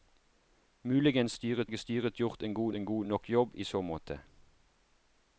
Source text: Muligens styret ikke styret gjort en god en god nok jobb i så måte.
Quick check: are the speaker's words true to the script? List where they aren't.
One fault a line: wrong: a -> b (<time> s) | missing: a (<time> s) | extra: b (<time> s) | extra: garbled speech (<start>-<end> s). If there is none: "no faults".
no faults